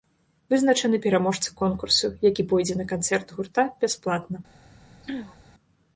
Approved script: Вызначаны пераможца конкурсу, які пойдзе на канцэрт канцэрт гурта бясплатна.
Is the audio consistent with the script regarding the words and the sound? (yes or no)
no